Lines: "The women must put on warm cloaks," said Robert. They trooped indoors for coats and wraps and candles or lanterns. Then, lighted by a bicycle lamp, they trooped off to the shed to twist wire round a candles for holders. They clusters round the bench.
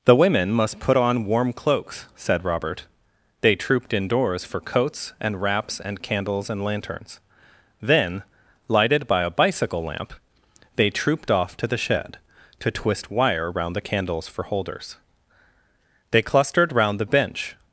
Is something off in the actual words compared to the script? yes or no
yes